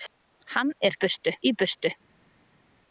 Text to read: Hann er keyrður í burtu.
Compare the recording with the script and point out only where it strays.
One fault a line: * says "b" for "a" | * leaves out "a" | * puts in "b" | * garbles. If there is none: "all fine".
* says "burtu" for "keyrður"